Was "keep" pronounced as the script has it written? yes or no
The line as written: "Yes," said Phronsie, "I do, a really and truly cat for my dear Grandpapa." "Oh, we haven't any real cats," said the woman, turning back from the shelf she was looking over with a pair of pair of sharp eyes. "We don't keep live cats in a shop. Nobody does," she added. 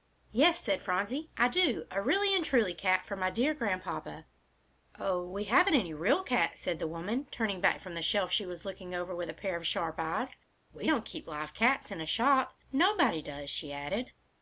yes